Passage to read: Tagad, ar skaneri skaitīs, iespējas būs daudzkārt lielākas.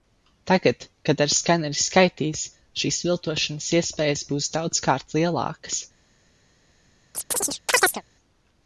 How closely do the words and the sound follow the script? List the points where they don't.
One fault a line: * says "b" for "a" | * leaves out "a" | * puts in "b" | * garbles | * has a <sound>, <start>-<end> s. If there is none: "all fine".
* puts in "kad"
* puts in "šīs viltošanas"
* has a chirp, 7.1-8.0 s